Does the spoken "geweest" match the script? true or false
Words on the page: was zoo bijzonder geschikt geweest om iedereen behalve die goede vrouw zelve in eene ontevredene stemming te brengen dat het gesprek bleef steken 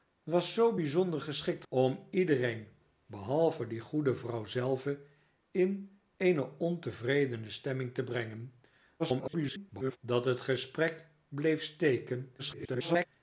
false